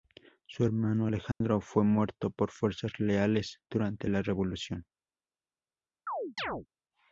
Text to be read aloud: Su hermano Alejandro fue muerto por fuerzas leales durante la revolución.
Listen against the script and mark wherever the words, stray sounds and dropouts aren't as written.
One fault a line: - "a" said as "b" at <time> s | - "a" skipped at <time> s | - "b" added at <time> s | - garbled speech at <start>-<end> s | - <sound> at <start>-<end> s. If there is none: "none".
- dropout at 1.3-1.4 s
- chirp at 6.1-6.7 s